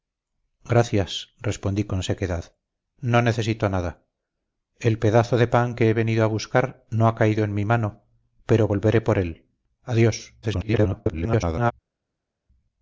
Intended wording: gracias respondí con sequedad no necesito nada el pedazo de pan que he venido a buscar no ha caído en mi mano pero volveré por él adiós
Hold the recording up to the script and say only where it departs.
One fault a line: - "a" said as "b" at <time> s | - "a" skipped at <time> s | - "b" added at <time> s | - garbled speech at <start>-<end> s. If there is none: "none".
- garbled speech at 10.4-11.7 s